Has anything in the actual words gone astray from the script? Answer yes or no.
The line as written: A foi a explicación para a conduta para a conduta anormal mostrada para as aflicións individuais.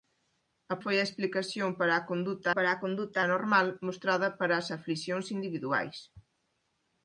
no